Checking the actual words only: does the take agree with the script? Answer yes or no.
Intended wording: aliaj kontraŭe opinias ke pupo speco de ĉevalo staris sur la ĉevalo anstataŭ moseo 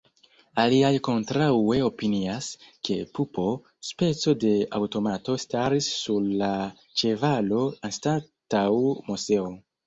no